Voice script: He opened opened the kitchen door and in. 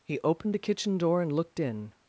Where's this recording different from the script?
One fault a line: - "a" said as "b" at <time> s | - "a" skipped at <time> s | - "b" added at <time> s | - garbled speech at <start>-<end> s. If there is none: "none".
- "opened" skipped at 0.5 s
- "looked" added at 1.3 s